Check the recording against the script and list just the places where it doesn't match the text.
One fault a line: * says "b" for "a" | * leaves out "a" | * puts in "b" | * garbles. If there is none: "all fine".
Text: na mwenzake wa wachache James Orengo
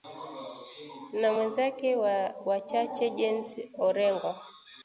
all fine